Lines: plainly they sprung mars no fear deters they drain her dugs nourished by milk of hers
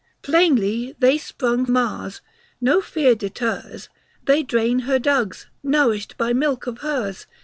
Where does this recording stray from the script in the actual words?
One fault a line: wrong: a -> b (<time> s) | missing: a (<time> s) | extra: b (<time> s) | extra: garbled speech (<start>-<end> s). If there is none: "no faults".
no faults